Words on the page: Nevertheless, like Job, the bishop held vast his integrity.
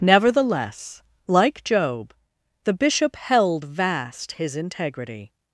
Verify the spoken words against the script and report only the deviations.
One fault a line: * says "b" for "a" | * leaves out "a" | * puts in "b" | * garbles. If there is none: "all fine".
all fine